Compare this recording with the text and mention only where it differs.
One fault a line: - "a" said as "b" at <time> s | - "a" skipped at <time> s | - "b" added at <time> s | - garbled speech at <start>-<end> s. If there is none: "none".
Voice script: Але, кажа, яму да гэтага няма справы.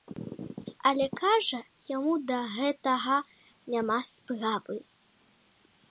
none